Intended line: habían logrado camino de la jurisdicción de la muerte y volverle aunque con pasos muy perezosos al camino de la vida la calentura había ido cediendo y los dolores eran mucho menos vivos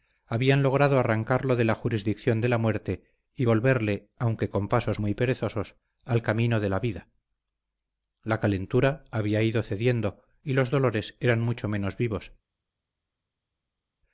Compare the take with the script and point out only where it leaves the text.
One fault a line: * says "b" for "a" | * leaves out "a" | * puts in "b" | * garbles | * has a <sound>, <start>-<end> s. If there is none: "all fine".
* says "arrancarlo" for "camino"